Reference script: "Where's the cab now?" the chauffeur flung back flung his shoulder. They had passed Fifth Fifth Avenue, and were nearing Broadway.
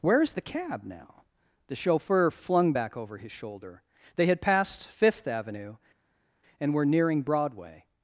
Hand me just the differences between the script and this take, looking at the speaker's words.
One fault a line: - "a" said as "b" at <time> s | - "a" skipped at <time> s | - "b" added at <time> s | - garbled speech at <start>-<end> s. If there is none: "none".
- "flung" said as "over" at 3.0 s
- "Fifth" skipped at 5.3 s